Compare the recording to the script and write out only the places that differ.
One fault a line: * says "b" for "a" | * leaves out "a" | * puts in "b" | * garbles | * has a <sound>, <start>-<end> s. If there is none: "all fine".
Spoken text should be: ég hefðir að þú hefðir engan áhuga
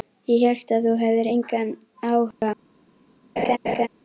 * says "hélt" for "hefðir"
* has a dropout, 2.3-2.4 s
* has a laugh, 3.4-3.9 s